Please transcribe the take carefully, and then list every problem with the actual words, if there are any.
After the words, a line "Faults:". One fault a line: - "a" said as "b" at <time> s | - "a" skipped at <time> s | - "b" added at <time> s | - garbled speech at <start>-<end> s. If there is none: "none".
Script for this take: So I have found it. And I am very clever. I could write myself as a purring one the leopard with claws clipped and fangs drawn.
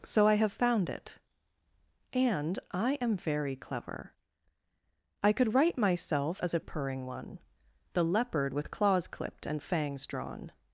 So I have found it. And I am very clever. I could write myself as a purring one the leopard with claws clipped and fangs drawn.
Faults:
none